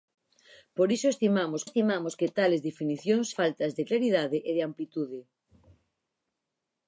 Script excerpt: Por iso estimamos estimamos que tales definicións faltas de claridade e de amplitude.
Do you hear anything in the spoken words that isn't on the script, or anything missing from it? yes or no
no